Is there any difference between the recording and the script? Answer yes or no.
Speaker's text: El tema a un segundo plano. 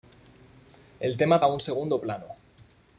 no